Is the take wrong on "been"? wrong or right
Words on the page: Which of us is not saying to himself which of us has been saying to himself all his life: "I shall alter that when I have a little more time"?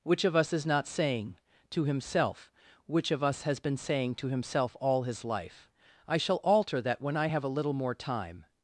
right